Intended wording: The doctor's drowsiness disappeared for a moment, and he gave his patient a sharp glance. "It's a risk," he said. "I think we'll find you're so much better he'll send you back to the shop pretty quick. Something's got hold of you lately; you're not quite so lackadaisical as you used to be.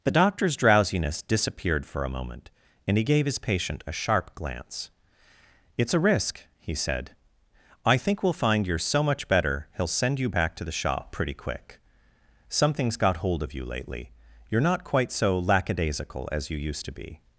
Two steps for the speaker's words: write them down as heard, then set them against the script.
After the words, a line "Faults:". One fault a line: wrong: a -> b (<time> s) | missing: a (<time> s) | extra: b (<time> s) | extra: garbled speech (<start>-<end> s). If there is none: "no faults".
The doctor's drowsiness disappeared for a moment, and he gave his patient a sharp glance. "It's a risk," he said. "I think we'll find you're so much better he'll send you back to the shop pretty quick. Something's got hold of you lately; you're not quite so lackadaisical as you used to be.
Faults:
no faults